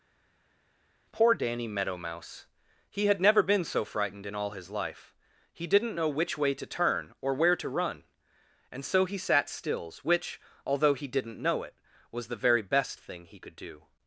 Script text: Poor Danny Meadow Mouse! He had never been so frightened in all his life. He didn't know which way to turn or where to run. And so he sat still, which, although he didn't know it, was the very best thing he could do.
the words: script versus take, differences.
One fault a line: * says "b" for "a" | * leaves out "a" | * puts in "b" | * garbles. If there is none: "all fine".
* says "stills" for "still"